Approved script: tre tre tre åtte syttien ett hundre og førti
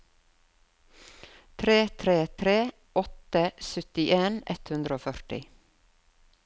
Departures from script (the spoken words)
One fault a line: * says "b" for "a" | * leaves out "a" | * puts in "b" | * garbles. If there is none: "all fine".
all fine